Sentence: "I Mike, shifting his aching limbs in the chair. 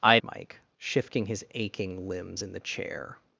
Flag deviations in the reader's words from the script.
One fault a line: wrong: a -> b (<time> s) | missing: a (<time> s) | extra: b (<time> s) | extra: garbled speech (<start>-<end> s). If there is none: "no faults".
no faults